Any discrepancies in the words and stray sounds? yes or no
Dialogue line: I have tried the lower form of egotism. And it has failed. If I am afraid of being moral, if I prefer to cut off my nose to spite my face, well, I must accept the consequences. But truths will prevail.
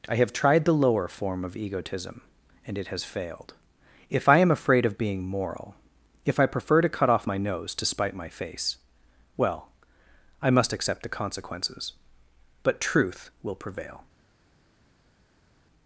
yes